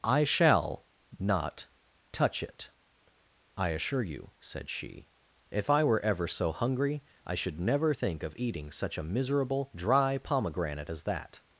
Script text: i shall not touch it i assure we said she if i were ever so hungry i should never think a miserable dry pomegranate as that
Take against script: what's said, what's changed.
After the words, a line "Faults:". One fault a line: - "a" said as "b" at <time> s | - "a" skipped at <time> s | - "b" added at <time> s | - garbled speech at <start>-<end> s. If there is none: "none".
i shall not touch it i assure you said she if i were ever so hungry i should never think of eating such a miserable dry pomegranate as that
Faults:
- "we" said as "you" at 4.0 s
- "of eating such" added at 8.2 s